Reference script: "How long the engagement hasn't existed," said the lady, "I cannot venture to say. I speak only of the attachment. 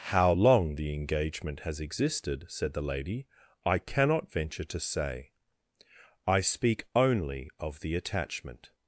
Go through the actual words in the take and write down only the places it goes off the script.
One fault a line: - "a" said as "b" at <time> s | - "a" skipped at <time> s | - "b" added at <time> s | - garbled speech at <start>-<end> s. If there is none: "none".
- "hasn't" said as "has" at 1.7 s